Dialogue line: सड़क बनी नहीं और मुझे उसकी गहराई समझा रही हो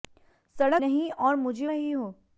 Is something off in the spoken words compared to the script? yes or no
yes